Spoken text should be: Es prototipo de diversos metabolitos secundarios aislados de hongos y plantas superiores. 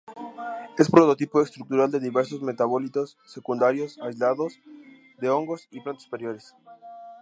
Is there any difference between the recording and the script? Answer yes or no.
yes